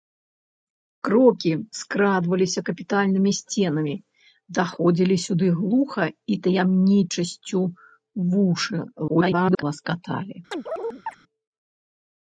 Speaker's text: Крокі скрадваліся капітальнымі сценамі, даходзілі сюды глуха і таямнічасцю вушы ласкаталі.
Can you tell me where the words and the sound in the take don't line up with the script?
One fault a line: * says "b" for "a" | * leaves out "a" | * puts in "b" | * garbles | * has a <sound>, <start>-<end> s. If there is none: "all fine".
* garbles
* has a chirp, 10.5-11.2 s